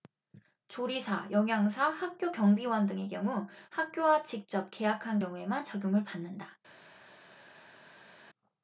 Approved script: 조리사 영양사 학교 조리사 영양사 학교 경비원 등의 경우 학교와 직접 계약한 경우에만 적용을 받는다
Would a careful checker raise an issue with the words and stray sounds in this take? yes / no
yes